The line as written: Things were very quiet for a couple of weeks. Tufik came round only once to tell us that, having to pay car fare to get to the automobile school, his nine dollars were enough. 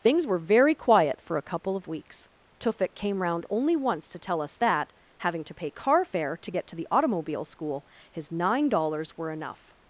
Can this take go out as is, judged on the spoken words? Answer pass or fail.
pass